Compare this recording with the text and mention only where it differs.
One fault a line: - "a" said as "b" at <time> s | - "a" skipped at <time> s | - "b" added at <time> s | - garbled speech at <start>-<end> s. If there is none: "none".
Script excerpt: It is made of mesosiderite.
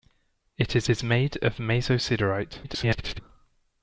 - "is" added at 0.9 s
- garbled speech at 2.6-3.2 s